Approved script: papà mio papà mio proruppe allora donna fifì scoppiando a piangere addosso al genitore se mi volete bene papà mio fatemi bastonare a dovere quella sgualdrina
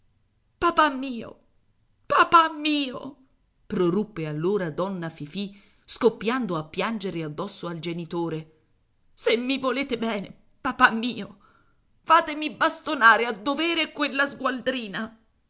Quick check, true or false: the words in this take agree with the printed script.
true